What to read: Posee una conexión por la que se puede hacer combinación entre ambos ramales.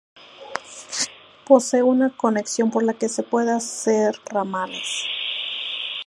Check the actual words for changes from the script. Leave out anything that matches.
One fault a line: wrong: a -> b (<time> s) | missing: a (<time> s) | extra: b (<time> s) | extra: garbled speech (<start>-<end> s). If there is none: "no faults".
missing: combinación entre ambos (4.2 s)